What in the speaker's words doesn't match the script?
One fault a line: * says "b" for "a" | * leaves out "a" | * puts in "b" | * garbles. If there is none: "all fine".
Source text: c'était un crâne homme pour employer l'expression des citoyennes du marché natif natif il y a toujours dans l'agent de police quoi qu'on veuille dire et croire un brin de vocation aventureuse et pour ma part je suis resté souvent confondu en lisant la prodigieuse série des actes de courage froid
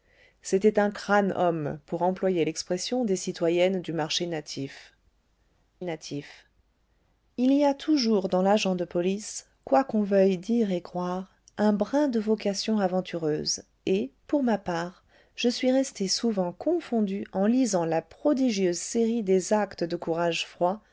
all fine